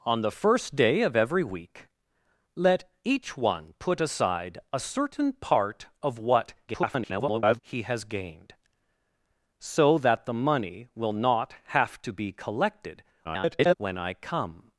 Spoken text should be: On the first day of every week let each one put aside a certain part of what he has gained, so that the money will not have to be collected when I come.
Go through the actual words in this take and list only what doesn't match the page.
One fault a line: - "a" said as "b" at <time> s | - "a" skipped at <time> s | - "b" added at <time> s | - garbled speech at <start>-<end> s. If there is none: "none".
- garbled speech at 6.7-7.6 s
- garbled speech at 13.2-13.7 s